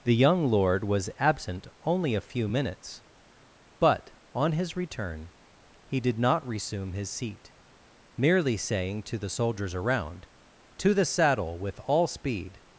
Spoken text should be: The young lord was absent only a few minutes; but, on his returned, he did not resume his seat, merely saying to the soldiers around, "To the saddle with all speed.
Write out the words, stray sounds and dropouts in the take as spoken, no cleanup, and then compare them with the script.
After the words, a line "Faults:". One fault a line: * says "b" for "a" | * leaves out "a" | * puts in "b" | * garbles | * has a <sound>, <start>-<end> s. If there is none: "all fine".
The young lord was absent only a few minutes; but, on his return, he did not resume his seat, merely saying to the soldiers around, "To the saddle with all speed.
Faults:
* says "return" for "returned"